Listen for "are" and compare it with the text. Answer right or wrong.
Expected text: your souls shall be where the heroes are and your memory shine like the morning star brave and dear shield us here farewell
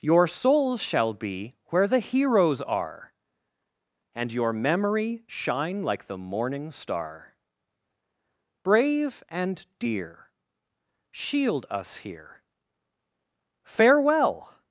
right